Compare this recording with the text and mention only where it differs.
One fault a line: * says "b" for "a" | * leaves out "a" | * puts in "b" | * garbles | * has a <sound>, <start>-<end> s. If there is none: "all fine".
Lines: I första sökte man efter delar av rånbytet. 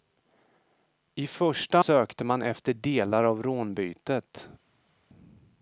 all fine